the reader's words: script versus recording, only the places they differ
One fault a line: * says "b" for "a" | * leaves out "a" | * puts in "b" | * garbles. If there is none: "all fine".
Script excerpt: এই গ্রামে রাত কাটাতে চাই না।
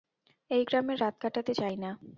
all fine